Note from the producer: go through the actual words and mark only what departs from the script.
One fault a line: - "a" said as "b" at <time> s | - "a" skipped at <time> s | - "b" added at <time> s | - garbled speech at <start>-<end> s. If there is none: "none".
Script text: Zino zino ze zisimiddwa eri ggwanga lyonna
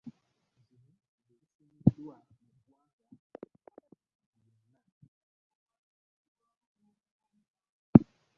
- "zino" skipped at 0.9 s
- "eri" said as "mu" at 2.3 s